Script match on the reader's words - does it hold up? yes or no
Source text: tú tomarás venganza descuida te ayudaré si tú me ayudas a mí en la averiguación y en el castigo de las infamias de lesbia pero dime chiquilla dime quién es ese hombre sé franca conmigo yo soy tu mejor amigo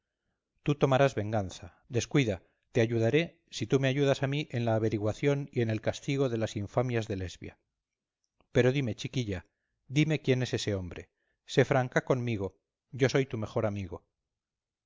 yes